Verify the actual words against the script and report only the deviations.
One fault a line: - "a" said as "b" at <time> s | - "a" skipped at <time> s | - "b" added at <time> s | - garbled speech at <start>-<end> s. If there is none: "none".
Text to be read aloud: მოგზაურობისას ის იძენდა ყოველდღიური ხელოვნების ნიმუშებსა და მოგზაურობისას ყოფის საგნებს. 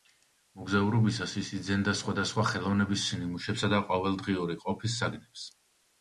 - "ყოველდღიური" said as "სხვადასხვა" at 2.0 s
- "მოგზაურობისას" said as "ყოველდღიური" at 3.9 s